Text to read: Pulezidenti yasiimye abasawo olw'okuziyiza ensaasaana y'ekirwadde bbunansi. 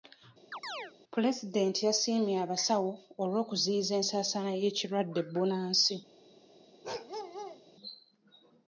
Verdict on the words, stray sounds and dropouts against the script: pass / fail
fail